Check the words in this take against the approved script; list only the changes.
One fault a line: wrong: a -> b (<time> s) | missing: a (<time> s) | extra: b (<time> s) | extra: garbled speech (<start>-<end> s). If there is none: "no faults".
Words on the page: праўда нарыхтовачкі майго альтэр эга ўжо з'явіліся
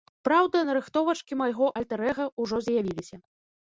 no faults